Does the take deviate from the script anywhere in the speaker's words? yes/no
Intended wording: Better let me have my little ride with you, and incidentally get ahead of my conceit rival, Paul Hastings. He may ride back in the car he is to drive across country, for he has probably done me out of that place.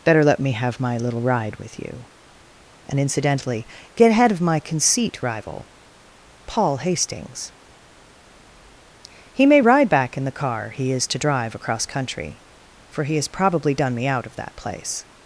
no